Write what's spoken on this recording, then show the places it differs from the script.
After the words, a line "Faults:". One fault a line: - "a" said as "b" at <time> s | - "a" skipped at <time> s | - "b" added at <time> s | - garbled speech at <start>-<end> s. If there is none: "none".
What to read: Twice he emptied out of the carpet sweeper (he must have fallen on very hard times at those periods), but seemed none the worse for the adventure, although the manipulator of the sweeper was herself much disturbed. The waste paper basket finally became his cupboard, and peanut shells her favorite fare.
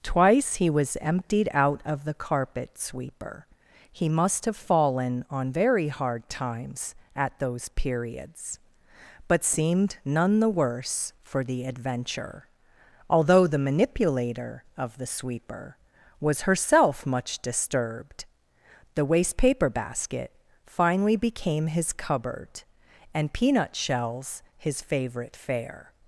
Twice he was emptied out of the carpet sweeper (he must have fallen on very hard times at those periods), but seemed none the worse for the adventure, although the manipulator of the sweeper was herself much disturbed. The waste paper basket finally became his cupboard, and peanut shells his favorite fare.
Faults:
- "was" added at 0.7 s
- "her" said as "his" at 24.6 s